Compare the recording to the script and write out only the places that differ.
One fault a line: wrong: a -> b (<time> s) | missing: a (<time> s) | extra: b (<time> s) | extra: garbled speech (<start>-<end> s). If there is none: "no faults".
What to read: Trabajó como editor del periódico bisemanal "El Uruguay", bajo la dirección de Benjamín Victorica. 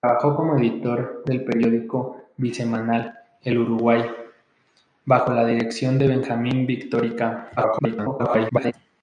extra: garbled speech (7.6-8.7 s)